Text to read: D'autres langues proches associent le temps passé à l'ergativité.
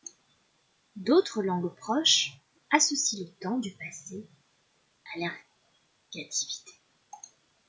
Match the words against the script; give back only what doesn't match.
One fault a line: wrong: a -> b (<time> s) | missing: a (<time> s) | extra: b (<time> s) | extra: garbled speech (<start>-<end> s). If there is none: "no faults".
extra: du (3.6 s)